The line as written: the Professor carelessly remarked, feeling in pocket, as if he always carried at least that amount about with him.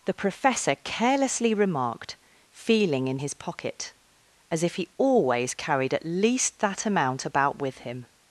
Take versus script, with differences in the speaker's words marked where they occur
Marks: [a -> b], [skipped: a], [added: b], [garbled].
the Professor carelessly remarked, feeling in [added: his] pocket, as if he always carried at least that amount about with him.